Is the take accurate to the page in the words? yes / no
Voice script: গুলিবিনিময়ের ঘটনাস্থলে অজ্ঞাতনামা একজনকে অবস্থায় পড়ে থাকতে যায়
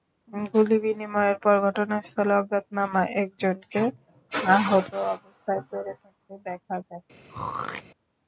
no